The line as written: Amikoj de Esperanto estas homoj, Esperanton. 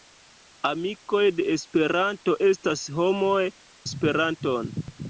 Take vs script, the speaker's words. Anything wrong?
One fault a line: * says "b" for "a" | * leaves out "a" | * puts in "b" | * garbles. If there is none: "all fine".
all fine